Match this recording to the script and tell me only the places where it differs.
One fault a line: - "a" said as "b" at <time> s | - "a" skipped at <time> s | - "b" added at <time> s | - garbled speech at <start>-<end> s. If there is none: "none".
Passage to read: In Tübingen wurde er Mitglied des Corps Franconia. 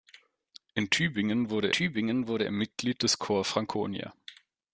- "Tübingen wurde" added at 1.7 s